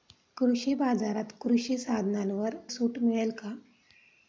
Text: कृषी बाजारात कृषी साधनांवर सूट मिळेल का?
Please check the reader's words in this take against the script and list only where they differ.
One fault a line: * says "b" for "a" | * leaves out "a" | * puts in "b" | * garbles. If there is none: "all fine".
all fine